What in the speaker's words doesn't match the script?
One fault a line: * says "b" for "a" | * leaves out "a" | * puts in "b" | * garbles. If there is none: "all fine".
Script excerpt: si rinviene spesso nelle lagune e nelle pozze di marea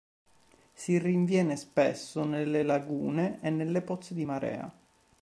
all fine